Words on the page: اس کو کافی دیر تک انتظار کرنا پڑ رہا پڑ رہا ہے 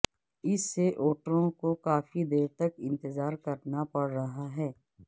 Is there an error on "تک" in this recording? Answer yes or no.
no